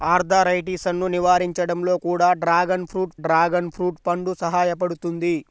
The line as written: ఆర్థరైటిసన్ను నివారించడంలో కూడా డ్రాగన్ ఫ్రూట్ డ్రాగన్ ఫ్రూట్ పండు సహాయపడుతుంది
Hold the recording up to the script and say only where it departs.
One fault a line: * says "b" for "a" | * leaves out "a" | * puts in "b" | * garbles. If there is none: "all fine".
all fine